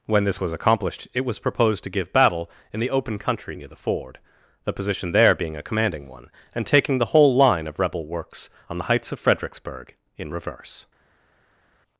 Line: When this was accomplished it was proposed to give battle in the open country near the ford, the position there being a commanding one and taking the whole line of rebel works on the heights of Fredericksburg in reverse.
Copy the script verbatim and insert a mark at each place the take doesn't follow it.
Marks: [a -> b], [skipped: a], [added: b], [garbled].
When this was accomplished it was proposed to give battle in the open country near the ford, the position there being a commanding one and taking the whole line of rebel works on the heights of Fredericksburg in reverse.